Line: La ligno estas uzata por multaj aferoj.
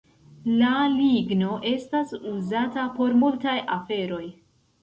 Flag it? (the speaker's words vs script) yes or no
no